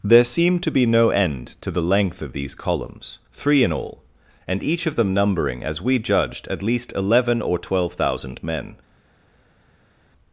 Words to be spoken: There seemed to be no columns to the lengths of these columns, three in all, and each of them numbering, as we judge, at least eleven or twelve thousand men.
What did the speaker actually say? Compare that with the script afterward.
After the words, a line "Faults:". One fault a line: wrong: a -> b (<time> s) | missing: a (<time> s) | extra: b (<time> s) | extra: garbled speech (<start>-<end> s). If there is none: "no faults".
There seemed to be no end to the length of these columns, three in all, and each of them numbering, as we judged, at least eleven or twelve thousand men.
Faults:
wrong: columns -> end (1.1 s)
wrong: lengths -> length (1.8 s)
wrong: judge -> judged (6.0 s)